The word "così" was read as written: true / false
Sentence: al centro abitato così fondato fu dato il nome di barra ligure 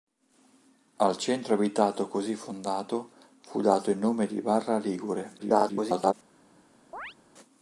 true